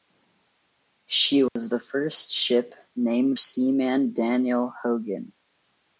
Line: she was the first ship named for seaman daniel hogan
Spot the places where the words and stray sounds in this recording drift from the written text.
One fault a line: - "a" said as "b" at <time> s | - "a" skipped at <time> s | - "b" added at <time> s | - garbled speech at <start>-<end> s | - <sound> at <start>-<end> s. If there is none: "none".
- dropout at 1.5-1.6 s
- "for" skipped at 3.4 s